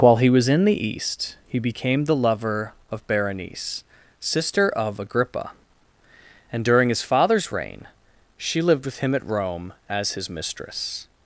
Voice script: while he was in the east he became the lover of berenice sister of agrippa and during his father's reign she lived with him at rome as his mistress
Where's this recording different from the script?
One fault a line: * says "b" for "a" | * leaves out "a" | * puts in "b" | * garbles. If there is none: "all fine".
all fine